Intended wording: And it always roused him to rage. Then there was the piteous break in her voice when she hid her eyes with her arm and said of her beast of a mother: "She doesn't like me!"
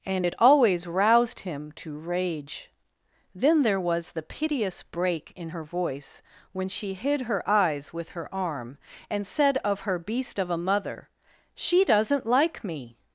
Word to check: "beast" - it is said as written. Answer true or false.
true